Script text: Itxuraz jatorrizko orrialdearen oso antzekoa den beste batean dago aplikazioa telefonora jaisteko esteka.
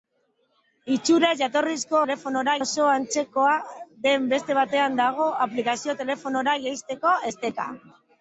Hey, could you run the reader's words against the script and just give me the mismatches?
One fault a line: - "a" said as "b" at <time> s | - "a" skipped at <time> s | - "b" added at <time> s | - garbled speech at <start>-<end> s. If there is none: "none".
- "orrialdearen" said as "telefonora" at 2.0 s